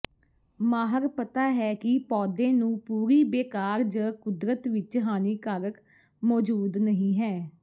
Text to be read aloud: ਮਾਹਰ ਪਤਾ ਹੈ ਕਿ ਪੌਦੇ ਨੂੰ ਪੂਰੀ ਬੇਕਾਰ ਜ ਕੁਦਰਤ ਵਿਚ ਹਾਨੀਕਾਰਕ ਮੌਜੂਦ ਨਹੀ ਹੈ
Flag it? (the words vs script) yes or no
no